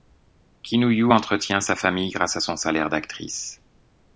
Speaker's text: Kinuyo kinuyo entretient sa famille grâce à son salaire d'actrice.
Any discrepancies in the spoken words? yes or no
yes